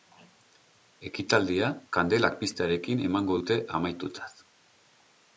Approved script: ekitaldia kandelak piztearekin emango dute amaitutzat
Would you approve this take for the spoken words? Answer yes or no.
yes